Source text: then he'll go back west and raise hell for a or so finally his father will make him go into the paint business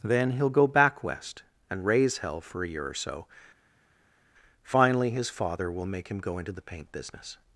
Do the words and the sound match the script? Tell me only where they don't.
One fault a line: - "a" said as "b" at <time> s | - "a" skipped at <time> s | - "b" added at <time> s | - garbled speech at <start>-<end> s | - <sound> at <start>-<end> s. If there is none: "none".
- "year" added at 2.7 s